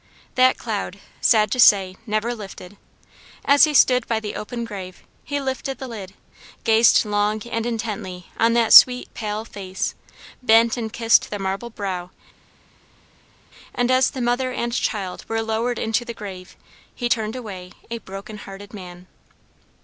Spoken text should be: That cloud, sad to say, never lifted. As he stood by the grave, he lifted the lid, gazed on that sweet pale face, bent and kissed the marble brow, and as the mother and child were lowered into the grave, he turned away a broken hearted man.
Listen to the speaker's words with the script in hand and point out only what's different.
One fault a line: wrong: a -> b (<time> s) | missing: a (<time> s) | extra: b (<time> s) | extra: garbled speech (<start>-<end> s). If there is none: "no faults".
extra: open (4.3 s)
extra: long and intently (7.0 s)